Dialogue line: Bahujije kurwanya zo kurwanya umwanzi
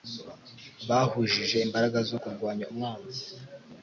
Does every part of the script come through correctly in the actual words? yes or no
no